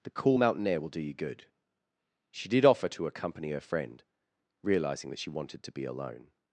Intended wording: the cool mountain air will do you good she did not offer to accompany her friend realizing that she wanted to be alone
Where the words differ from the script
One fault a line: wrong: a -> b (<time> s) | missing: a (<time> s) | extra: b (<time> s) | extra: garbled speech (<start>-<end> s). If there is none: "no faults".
missing: not (2.6 s)